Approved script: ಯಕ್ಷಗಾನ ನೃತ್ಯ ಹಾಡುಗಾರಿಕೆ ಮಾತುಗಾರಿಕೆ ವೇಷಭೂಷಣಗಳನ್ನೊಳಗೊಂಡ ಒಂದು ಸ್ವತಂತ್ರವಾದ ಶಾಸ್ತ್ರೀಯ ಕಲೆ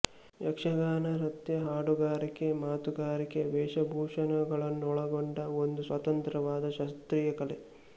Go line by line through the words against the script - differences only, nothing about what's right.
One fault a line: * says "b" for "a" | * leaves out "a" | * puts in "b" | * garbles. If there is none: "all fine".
all fine